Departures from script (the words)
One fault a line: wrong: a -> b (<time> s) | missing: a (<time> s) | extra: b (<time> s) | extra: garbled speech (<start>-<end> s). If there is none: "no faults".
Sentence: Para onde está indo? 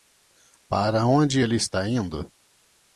extra: ele (1.4 s)